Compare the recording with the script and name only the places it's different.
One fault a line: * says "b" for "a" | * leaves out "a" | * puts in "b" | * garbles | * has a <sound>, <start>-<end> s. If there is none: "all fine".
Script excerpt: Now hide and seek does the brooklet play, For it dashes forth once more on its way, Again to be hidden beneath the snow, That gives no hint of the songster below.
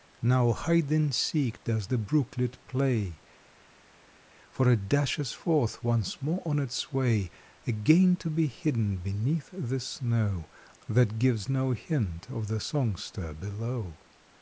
all fine